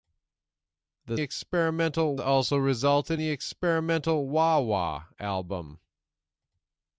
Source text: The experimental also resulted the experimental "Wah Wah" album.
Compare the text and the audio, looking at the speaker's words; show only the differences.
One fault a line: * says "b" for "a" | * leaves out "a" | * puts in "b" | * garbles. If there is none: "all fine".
all fine